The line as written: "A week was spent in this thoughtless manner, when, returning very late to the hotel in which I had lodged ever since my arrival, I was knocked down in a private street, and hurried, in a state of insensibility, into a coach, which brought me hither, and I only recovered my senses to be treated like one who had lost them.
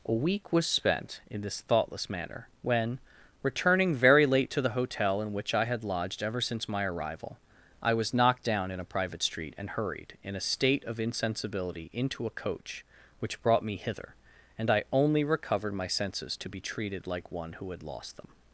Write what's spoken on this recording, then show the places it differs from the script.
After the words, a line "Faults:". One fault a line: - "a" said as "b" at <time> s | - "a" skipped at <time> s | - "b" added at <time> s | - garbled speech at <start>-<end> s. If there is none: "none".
"A week was spent in this thoughtless manner, when, returning very late to the hotel in which I had lodged ever since my arrival, I was knocked down in a private street, and hurried, in a state of insensibility, into a coach, which brought me hither, and I only recovered my senses to be treated like one who had lost them.
Faults:
none